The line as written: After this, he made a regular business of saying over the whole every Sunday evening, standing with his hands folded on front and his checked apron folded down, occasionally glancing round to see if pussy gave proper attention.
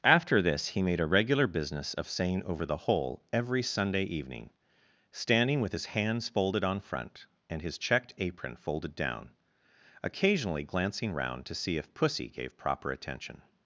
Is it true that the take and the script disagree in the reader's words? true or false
false